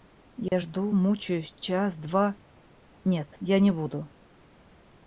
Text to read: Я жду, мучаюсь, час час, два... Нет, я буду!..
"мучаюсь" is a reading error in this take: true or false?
false